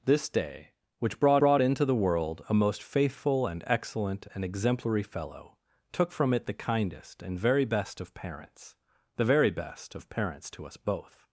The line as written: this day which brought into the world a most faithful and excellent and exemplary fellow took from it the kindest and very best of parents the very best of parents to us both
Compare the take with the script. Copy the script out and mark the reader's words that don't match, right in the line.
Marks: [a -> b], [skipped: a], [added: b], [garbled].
this day which brought [added: brought] into the world a most faithful and excellent and exemplary fellow took from it the kindest and very best of parents the very best of parents to us both